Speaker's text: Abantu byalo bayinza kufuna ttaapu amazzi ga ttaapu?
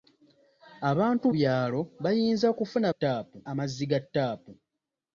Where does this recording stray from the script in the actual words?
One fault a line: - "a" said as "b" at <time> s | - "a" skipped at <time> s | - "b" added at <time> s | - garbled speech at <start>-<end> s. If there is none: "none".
none